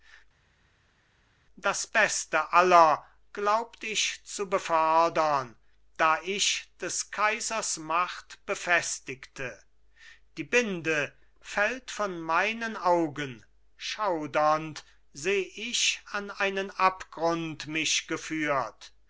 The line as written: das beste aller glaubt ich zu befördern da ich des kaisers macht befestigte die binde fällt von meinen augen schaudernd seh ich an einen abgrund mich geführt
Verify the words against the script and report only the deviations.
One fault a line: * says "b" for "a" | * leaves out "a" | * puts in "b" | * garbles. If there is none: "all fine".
all fine